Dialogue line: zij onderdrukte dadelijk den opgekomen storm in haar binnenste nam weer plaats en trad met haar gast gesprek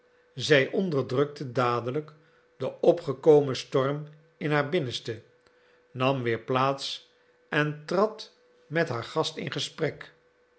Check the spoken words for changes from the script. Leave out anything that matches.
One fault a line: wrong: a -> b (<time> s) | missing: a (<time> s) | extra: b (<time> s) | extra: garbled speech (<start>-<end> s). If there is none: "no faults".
extra: in (9.4 s)